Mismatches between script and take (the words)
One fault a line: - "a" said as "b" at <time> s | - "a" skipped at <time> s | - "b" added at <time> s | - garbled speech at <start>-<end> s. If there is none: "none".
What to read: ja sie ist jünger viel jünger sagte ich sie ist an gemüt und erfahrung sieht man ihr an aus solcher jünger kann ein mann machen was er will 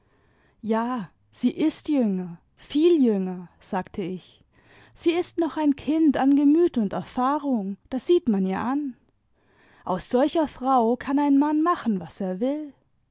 - "noch ein kind" added at 5.4 s
- "das" added at 7.9 s
- "jünger" said as "frau" at 10.5 s